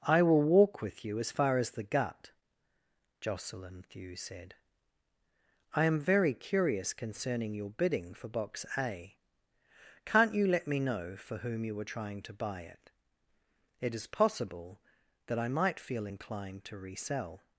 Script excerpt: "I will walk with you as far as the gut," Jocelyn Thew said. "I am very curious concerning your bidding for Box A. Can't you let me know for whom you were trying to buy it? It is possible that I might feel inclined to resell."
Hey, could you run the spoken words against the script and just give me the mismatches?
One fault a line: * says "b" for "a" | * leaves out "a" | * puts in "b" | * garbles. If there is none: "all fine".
all fine